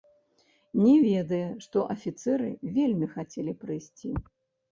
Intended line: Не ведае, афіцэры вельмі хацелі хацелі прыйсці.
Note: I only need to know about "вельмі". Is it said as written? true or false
true